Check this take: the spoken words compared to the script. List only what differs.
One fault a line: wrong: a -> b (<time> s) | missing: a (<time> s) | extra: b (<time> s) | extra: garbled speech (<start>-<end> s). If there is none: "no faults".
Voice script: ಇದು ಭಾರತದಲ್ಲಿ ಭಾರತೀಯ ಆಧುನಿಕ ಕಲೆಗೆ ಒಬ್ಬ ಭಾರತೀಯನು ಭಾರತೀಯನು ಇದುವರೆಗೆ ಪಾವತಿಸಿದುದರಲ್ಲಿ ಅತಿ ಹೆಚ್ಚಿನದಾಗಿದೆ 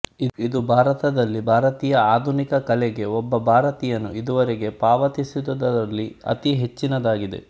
missing: ಭಾರತೀಯನು (4.1 s)